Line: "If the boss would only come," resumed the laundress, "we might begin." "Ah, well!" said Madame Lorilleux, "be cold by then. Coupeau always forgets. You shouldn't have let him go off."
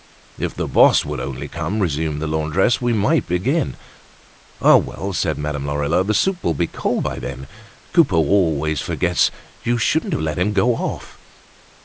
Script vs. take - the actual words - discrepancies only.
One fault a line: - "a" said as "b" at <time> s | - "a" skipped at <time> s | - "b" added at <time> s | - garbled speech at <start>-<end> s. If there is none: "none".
- "the soup will" added at 6.0 s